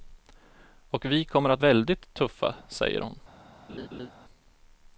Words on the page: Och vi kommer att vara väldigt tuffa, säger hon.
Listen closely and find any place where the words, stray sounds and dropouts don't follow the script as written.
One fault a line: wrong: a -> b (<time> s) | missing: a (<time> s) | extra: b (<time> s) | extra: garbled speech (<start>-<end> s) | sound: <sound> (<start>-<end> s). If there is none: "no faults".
missing: vara (1.6 s)
sound: laugh (3.7-4.1 s)